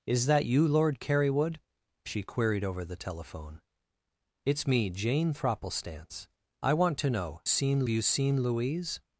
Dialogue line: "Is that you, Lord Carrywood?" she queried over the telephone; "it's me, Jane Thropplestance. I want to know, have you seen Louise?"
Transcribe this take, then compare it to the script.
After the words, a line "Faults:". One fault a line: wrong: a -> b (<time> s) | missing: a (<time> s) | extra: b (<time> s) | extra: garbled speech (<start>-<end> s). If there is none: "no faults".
"Is that you, Lord Carrywood?" she queried over the telephone; "it's me, Jane Thropplestance. I want to know, seen you seen Louise?"
Faults:
wrong: have -> seen (7.4 s)